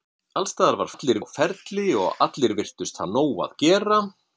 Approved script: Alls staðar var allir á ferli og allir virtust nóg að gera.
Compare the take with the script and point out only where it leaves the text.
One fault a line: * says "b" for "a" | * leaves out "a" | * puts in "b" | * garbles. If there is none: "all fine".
all fine